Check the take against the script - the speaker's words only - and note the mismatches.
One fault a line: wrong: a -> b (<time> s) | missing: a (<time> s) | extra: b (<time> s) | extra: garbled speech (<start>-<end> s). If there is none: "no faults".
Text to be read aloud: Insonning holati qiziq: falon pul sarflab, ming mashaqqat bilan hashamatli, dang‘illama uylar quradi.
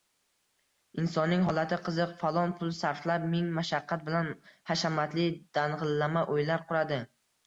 no faults